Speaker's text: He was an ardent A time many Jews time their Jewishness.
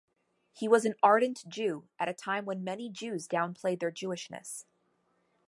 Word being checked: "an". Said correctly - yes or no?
yes